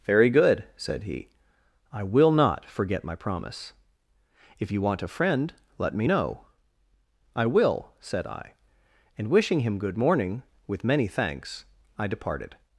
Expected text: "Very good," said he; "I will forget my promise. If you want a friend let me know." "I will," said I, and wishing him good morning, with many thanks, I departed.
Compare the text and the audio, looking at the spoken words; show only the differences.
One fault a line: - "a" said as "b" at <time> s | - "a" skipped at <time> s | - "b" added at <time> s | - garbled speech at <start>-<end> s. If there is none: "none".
- "not" added at 2.3 s